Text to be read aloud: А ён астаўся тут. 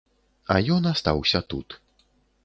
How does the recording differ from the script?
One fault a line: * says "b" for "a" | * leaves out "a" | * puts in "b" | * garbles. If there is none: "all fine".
all fine